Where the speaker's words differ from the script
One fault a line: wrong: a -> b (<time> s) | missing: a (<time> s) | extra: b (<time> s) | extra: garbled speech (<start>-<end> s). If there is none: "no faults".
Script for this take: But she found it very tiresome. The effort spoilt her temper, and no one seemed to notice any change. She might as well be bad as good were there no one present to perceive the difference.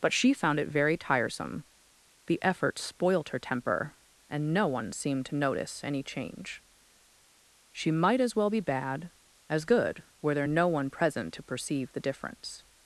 no faults